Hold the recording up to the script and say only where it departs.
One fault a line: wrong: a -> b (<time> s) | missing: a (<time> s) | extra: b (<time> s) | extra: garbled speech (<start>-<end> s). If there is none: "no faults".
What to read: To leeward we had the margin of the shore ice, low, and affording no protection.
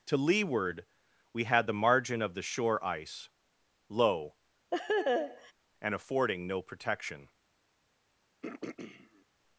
no faults